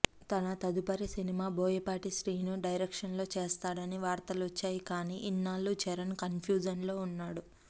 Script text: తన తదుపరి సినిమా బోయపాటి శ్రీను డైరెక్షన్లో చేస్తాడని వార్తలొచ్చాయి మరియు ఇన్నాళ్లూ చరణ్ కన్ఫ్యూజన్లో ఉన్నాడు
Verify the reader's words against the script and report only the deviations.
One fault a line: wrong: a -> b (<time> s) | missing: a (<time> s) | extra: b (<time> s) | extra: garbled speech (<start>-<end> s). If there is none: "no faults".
wrong: మరియు -> కానీ (4.9 s)